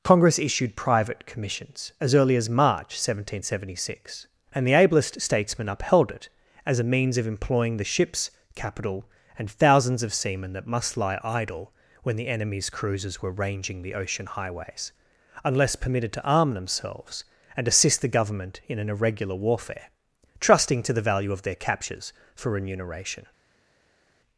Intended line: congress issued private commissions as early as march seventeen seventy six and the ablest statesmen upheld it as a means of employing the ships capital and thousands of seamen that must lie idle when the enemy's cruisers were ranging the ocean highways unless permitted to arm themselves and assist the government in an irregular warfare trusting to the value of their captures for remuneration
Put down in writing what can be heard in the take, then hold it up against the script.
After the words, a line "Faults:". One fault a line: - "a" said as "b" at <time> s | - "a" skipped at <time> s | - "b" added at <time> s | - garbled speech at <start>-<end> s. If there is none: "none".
congress issued private commissions as early as march seventeen seventy six and the ablest statesmen upheld it as a means of employing the ships capital and thousands of seamen that must lie idle when the enemy's cruisers were ranging the ocean highways unless permitted to arm themselves and assist the government in an irregular warfare trusting to the value of their captures for remuneration
Faults:
none